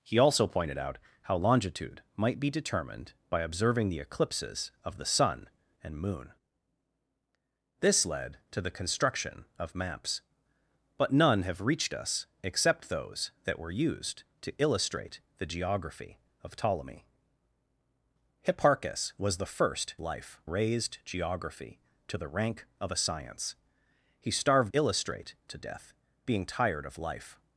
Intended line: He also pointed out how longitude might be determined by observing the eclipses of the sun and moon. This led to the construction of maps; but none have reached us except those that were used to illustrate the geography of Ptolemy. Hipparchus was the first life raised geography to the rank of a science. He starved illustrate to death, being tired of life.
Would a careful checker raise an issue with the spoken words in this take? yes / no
no